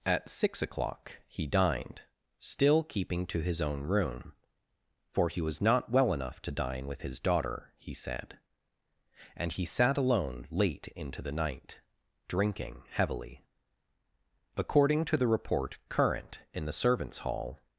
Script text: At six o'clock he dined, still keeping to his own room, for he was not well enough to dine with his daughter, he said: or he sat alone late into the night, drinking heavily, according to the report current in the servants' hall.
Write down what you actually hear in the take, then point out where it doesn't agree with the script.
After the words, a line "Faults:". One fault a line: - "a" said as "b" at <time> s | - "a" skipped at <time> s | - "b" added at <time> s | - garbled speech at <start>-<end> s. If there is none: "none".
At six o'clock he dined, still keeping to his own room, for he was not well enough to dine with his daughter, he said: and he sat alone late into the night, drinking heavily, according to the report current in the servants' hall.
Faults:
- "or" said as "and" at 9.3 s